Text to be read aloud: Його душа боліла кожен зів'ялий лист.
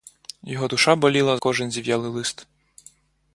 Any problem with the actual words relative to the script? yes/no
no